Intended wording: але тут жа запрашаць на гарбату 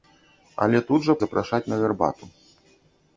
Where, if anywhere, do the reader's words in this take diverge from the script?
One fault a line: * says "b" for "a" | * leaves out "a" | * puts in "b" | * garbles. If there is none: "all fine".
all fine